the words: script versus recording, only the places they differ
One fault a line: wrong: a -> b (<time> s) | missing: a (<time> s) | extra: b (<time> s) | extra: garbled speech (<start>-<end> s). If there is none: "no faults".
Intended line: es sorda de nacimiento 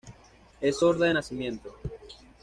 no faults